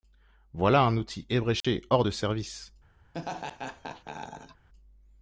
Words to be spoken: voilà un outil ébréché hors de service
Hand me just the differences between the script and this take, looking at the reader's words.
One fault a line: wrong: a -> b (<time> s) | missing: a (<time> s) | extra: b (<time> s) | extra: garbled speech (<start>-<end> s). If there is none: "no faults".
no faults